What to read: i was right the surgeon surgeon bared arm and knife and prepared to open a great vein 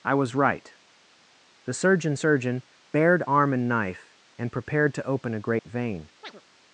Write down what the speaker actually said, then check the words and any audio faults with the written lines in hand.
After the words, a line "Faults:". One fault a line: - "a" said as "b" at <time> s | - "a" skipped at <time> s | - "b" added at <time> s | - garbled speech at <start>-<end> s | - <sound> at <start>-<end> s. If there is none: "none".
i was right the surgeon surgeon bared arm and knife and prepared to open a great vein
Faults:
- dropout at 5.6-5.6 s
- chirp at 6.2-6.4 s